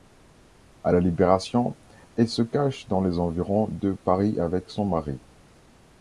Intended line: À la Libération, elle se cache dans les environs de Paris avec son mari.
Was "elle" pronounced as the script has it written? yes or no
yes